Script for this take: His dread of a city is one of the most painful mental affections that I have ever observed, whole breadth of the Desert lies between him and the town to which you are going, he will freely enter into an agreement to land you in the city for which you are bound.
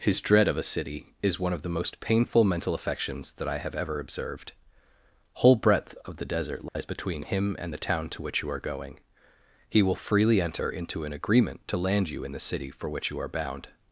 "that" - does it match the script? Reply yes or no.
yes